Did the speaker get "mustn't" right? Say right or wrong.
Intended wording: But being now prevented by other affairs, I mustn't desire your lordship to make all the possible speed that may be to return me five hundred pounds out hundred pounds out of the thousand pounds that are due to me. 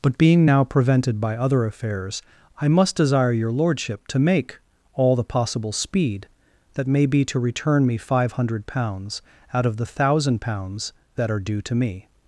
wrong